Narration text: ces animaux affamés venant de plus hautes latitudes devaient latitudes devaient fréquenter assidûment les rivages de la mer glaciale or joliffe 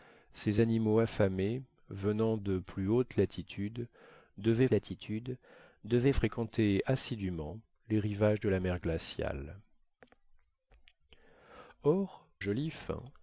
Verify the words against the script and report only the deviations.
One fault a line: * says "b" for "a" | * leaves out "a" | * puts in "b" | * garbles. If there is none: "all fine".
all fine